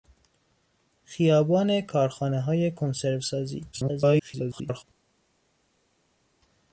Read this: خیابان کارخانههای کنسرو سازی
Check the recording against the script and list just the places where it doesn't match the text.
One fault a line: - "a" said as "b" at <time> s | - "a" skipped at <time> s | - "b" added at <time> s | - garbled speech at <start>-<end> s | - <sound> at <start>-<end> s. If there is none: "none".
- garbled speech at 3.7-4.8 s